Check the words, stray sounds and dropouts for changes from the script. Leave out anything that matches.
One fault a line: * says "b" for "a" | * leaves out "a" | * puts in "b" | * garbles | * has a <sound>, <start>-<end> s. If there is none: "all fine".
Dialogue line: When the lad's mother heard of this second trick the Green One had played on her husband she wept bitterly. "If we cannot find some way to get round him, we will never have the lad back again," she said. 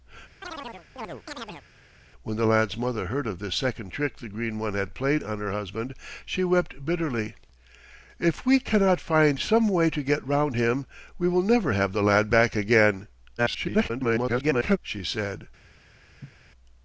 * has a chirp, 0.4-1.7 s
* garbles
* has a cough, 16.2-16.3 s